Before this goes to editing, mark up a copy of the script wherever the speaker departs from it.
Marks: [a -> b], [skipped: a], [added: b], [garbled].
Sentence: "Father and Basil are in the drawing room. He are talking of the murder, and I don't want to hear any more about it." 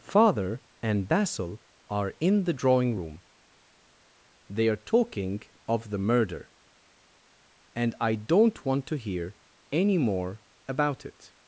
"Father and Basil are in the drawing room. [He -> They] are talking of the murder, and I don't want to hear any more about it."